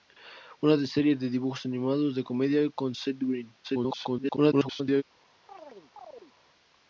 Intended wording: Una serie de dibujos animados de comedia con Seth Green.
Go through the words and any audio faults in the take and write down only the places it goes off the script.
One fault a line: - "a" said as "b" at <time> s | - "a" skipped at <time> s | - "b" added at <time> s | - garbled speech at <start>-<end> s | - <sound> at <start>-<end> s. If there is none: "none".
- garbled speech at 3.6-5.0 s
- chirp at 5.5-6.3 s